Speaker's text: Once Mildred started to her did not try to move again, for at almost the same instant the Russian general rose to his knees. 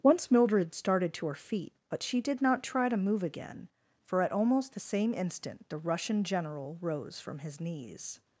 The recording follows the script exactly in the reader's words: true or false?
false